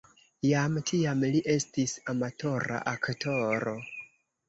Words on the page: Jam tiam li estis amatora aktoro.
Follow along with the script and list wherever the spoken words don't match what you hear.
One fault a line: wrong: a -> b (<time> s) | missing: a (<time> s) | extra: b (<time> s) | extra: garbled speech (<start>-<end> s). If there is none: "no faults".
no faults